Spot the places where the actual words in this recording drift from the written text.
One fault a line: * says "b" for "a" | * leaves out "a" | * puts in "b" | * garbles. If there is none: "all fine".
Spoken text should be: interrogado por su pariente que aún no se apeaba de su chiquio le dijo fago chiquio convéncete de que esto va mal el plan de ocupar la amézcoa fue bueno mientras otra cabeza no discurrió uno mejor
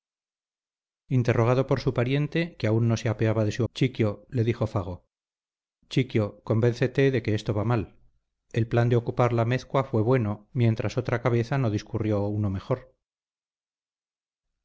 all fine